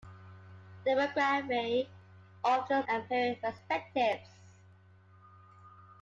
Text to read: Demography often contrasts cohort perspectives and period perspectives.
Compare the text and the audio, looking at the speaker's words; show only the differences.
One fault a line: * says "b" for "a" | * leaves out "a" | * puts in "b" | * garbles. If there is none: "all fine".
* leaves out "contrasts cohort perspectives"